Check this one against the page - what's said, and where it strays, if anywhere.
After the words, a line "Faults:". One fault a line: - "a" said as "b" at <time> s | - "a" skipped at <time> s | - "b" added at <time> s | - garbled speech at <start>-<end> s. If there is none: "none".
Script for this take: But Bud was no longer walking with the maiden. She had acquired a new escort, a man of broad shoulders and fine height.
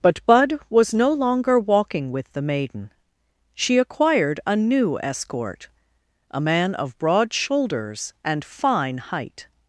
But Bud was no longer walking with the maiden. She acquired a new escort, a man of broad shoulders and fine height.
Faults:
- "had" skipped at 3.8 s